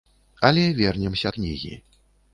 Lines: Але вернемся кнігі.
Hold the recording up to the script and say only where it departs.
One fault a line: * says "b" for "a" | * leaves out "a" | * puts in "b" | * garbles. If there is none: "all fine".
all fine